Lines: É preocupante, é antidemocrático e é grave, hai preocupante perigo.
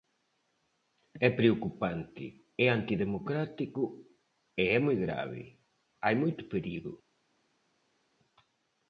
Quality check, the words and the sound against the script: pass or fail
fail